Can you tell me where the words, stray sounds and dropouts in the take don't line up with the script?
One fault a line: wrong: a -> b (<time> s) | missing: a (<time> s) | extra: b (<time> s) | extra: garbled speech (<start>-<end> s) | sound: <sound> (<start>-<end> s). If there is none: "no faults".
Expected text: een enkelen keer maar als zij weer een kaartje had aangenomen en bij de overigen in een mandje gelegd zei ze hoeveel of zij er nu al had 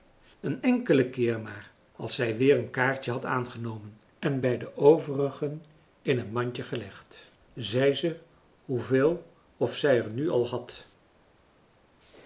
no faults